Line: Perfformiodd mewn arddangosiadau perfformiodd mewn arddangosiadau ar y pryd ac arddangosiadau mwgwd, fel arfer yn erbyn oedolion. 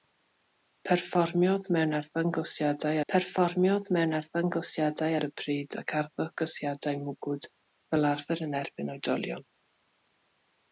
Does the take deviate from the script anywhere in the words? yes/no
no